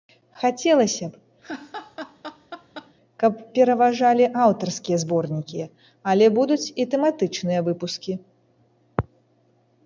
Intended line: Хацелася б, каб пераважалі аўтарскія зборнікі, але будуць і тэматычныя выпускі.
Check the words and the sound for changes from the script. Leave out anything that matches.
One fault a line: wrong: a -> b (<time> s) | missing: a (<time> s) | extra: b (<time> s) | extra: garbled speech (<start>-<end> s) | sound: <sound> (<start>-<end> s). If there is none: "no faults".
sound: laugh (1.4-2.9 s)